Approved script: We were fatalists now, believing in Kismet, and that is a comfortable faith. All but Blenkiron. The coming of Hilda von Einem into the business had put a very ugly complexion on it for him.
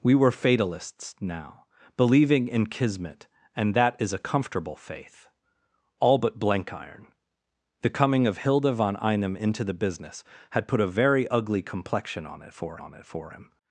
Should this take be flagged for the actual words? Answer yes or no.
yes